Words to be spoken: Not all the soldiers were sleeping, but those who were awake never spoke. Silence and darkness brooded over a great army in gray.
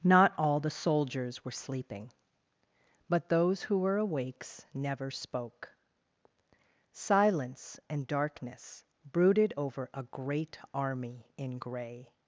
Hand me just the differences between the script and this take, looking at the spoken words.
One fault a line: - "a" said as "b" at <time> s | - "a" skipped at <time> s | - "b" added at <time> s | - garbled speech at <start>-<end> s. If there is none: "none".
- "awake" said as "awakes" at 4.0 s